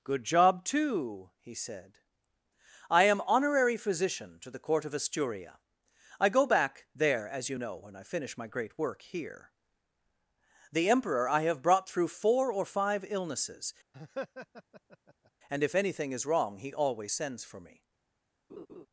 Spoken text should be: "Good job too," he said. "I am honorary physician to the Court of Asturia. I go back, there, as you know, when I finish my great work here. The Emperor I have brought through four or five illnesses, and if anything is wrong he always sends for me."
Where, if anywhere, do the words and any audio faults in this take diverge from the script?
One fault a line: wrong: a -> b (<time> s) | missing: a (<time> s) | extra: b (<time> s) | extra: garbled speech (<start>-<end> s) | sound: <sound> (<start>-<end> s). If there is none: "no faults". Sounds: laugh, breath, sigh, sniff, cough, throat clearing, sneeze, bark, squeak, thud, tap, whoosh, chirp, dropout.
sound: laugh (13.9-15.3 s)
sound: laugh (18.5-18.9 s)